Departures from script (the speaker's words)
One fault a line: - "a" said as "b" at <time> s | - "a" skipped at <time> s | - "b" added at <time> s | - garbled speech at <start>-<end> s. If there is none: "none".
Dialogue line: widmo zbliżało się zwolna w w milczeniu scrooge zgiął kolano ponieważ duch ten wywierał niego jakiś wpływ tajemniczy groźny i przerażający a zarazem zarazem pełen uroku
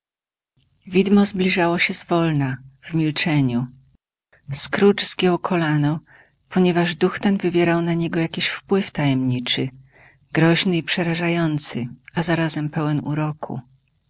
- "w" skipped at 2.9 s
- "na" added at 7.8 s
- "zarazem" skipped at 12.7 s